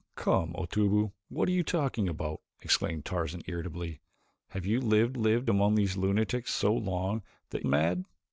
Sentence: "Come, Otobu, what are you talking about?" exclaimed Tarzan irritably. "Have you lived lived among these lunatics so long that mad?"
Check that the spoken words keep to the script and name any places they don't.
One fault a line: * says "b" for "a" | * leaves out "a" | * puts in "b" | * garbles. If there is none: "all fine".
all fine